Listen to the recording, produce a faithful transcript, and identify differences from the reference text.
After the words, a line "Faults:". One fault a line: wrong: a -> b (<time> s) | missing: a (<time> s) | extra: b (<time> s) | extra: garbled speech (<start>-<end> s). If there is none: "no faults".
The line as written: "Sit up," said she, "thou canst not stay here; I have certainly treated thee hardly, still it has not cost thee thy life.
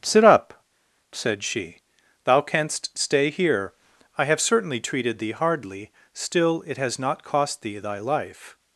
"Sit up," said she, "thou canst stay here; I have certainly treated thee hardly, still it has not cost thee thy life.
Faults:
missing: not (3.0 s)